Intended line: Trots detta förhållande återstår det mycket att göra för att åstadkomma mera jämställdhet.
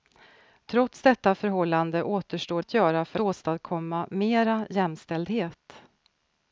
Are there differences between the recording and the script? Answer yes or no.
yes